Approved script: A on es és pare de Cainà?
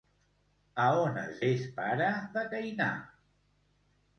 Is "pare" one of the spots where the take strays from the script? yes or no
no